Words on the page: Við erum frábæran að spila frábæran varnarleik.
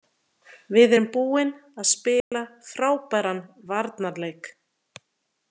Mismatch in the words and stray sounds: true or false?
true